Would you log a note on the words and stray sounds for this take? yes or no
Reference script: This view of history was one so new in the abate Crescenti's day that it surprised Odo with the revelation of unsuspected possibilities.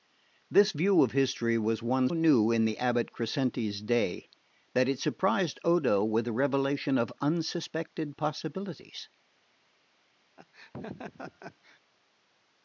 yes